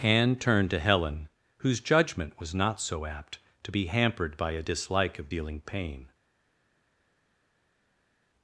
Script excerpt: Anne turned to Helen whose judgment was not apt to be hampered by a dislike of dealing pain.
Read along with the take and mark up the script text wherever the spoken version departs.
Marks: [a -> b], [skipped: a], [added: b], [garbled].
Anne turned to Helen whose judgment was not [added: so] apt to be hampered by a dislike of dealing pain.